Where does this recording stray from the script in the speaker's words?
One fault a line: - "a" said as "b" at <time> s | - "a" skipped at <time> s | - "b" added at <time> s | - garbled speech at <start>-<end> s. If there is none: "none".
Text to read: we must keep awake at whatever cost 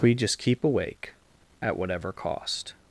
- "must" said as "just" at 0.1 s